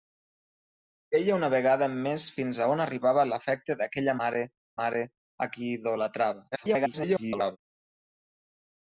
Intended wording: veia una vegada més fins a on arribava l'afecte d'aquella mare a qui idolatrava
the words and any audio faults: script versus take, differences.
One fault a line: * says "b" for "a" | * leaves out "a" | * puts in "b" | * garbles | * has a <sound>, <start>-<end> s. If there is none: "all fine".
* puts in "mare"
* garbles